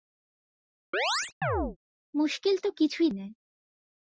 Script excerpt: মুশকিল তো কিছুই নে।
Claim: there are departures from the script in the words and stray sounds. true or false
true